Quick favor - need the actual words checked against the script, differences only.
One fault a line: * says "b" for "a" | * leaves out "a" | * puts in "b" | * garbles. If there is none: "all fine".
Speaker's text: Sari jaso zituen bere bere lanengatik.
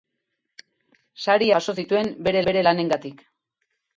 all fine